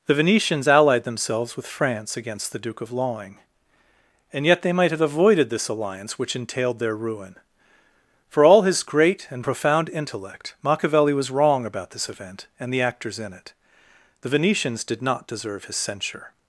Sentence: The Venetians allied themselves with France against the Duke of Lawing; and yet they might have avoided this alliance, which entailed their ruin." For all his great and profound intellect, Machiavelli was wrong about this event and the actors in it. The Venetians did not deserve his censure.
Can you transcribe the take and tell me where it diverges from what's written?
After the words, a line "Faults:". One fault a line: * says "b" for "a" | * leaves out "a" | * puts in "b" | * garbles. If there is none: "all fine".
The Venetians allied themselves with France against the Duke of Lawing; and yet they might have avoided this alliance, which entailed their ruin." For all his great and profound intellect, Machiavelli was wrong about this event and the actors in it. The Venetians did not deserve his censure.
Faults:
all fine